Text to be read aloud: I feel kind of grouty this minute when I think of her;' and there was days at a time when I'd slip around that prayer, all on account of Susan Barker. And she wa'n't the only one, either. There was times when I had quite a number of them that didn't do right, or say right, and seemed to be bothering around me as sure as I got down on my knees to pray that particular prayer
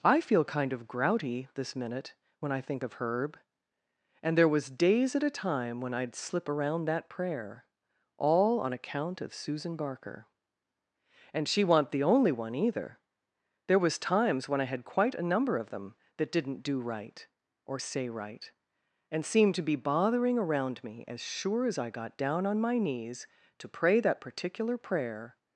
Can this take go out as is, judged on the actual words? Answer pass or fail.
fail